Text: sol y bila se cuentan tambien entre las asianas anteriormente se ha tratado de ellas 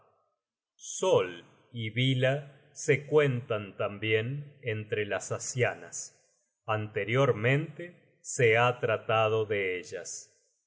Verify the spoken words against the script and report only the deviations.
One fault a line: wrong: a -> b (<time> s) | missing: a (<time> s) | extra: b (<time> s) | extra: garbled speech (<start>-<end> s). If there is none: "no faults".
no faults